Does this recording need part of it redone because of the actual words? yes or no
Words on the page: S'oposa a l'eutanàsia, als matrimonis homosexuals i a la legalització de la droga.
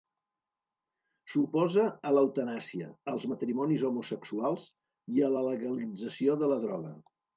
no